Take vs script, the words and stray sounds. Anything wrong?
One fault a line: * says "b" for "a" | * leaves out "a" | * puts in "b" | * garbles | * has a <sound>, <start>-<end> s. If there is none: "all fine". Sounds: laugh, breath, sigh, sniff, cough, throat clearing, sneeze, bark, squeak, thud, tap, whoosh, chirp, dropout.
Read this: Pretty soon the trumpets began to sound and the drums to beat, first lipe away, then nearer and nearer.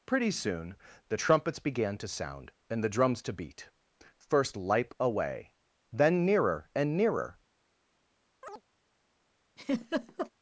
* has a chirp, 8.4-8.6 s
* has a laugh, 9.6-10.3 s